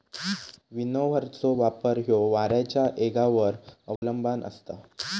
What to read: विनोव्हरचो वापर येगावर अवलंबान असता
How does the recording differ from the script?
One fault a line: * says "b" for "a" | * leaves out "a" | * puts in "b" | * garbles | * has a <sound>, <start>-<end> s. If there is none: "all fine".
* puts in "ह्यो वाऱ्याच्या"
* has a dropout, 4.0-4.0 s